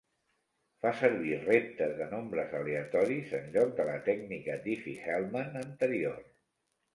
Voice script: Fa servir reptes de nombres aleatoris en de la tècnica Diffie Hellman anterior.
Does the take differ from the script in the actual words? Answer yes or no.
yes